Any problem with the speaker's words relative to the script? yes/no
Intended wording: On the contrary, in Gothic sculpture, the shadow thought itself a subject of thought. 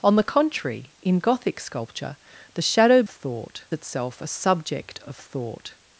no